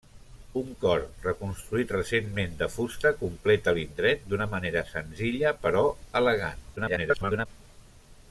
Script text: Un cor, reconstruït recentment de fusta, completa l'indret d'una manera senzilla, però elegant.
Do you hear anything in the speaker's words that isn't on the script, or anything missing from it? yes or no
yes